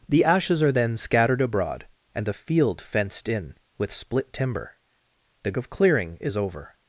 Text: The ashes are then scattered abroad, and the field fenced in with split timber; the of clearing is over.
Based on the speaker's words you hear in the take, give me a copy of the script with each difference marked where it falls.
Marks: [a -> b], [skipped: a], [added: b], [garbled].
The ashes are then scattered abroad, and the field fenced in with split timber; the of clearing is over.